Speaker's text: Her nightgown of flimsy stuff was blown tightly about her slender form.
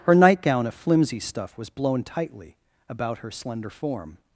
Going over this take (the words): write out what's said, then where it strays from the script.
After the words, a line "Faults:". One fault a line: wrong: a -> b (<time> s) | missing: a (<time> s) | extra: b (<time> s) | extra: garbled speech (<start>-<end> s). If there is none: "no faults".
Her nightgown of flimsy stuff was blown tightly about her slender form.
Faults:
no faults